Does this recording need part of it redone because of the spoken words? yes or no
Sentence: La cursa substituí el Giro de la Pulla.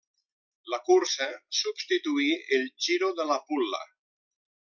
no